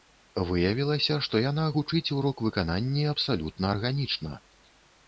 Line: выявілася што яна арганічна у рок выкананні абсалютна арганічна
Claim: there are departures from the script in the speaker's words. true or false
true